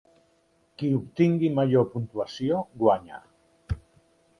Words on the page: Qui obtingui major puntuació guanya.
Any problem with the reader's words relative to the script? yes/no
no